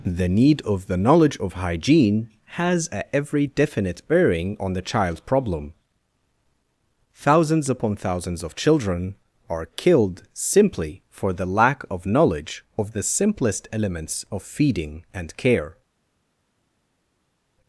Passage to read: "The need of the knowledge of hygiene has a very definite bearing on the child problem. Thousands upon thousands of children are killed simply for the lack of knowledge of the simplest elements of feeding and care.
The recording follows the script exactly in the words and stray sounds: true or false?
false